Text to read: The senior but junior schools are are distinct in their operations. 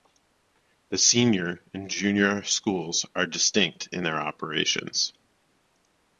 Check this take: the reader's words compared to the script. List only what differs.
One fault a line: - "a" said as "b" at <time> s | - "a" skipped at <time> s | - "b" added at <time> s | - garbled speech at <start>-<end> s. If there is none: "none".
- "but" said as "and" at 1.8 s
- "are" skipped at 3.3 s